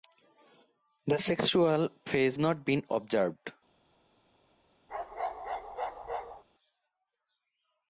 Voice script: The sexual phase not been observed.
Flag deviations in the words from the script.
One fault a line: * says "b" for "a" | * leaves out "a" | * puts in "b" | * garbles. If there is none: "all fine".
all fine